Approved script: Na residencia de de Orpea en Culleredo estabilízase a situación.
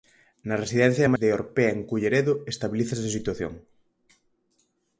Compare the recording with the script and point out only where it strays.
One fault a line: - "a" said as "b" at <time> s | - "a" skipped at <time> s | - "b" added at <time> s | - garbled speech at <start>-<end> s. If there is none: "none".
none